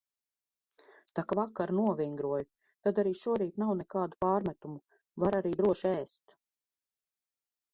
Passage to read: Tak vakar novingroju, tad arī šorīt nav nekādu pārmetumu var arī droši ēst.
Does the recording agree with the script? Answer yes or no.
yes